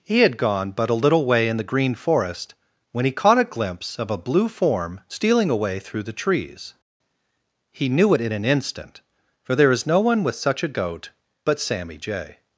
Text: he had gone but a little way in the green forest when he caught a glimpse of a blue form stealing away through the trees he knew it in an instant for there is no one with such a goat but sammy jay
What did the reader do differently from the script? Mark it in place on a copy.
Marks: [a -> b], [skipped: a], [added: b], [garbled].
he had gone but a little way in the green forest when he caught a glimpse of a blue form stealing away through the trees he knew it in an instant for there is no one with such a goat but sammy jay